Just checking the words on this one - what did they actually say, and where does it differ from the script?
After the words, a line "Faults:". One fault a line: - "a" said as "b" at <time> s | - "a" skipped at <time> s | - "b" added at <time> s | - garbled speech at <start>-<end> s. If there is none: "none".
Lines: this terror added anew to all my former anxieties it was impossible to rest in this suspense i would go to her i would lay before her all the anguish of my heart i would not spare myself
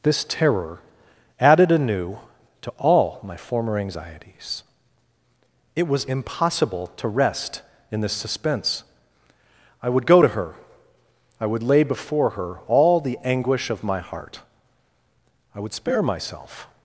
this terror added anew to all my former anxieties it was impossible to rest in this suspense i would go to her i would lay before her all the anguish of my heart i would spare myself
Faults:
- "not" skipped at 15.7 s